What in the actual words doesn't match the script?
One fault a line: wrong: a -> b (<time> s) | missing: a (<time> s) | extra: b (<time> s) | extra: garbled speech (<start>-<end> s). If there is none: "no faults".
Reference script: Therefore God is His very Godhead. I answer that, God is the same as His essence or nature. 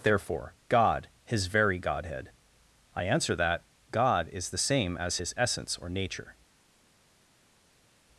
missing: is (1.1 s)